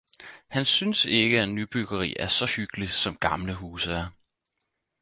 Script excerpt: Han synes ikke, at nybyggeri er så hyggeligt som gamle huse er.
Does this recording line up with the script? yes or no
yes